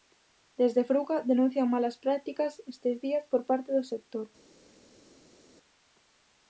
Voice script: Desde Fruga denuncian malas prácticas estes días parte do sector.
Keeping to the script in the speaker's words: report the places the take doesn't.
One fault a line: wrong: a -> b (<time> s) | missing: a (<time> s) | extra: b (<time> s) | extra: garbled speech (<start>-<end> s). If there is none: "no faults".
extra: por (3.3 s)